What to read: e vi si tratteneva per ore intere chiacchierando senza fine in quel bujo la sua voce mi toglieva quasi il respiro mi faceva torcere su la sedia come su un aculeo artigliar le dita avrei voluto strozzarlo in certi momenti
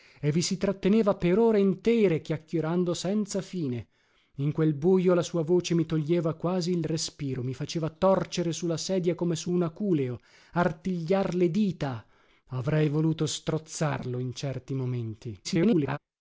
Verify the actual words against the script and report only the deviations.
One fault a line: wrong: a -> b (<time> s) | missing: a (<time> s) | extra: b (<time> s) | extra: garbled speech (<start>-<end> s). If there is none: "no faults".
extra: garbled speech (15.4-16.0 s)